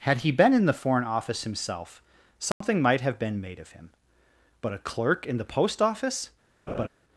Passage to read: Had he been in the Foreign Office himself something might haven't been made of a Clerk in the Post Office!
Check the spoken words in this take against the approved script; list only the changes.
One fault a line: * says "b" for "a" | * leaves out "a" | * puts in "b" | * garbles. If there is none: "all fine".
* says "have" for "haven't"
* puts in "him but"